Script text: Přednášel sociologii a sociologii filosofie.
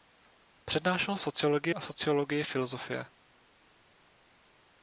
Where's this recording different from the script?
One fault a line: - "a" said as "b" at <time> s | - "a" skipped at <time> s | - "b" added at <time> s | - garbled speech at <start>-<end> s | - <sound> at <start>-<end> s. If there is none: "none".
none